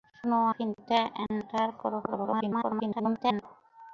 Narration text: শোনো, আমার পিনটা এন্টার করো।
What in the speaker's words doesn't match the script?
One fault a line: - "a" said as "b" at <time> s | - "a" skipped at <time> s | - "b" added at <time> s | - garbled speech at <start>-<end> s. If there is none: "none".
- "আমার" skipped at 0.4 s
- garbled speech at 2.1-3.4 s